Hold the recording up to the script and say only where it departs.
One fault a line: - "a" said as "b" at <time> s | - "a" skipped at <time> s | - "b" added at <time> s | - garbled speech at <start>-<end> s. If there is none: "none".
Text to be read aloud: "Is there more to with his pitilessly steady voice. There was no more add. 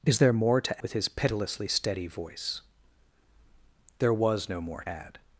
none